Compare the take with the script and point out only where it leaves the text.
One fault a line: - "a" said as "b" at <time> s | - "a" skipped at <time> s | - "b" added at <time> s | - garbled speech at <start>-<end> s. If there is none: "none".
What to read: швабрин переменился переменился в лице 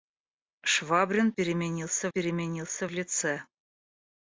none